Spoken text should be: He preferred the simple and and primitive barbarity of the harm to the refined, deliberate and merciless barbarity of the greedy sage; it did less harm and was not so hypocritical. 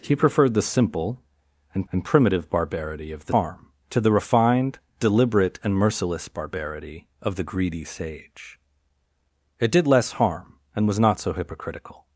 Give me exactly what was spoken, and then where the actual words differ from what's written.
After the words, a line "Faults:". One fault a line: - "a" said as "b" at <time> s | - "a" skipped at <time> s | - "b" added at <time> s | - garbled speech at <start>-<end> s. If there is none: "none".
He preferred the simple and and primitive barbarity of the harm to the refined, deliberate and merciless barbarity of the greedy sage; it did less harm and was not so hypocritical.
Faults:
none